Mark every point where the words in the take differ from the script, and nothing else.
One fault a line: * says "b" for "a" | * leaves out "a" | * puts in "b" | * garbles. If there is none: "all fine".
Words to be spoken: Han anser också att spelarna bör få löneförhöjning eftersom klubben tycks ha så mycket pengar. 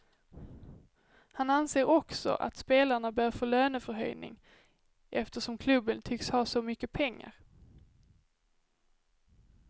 all fine